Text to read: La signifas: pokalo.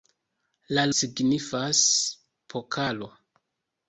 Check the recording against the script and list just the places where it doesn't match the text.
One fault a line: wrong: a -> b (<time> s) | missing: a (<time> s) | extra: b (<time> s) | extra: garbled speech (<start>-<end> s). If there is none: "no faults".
no faults